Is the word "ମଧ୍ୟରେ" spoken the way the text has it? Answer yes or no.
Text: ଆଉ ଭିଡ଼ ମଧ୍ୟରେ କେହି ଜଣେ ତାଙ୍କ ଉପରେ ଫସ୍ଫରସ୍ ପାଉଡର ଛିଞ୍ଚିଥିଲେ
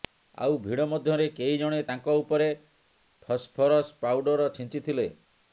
yes